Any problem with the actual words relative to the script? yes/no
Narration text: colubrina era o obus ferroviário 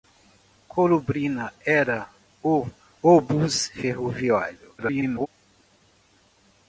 yes